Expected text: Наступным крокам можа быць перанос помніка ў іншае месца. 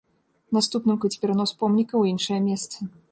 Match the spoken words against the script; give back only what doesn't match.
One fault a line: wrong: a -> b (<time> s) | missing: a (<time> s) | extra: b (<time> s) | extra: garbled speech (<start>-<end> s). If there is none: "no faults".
missing: крокам можа (1.0 s)